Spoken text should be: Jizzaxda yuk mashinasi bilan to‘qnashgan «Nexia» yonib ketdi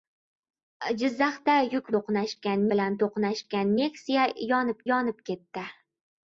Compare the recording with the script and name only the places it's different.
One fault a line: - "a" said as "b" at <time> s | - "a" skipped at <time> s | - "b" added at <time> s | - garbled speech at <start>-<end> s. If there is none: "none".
- "mashinasi" said as "to‘qnashgan" at 2.0 s
- "yonib" added at 4.9 s